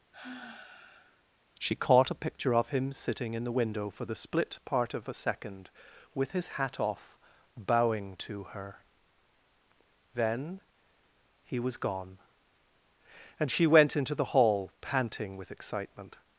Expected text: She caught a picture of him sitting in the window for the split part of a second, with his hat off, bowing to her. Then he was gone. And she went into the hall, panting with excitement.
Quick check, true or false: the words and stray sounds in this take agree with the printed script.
false